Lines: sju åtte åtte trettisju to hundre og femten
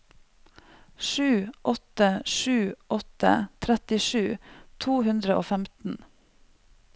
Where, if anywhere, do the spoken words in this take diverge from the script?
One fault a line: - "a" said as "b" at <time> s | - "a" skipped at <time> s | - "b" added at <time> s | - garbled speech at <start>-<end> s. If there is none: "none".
- "sju" added at 2.2 s